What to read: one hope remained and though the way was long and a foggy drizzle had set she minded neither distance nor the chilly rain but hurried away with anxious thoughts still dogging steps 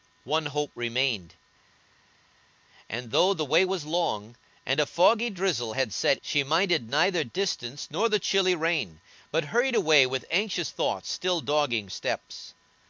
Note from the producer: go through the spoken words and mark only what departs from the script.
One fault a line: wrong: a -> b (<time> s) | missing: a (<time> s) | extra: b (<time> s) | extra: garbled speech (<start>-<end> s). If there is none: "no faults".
no faults